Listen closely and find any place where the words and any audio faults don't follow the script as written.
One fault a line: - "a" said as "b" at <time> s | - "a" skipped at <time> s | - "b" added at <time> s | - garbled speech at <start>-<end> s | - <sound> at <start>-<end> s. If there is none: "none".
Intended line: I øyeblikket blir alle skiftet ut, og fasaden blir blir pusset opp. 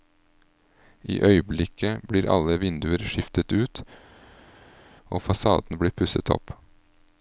- "vinduer" added at 2.6 s
- "blir" skipped at 5.9 s